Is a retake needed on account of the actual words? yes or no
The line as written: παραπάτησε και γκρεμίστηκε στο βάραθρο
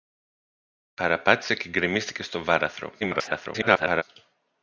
yes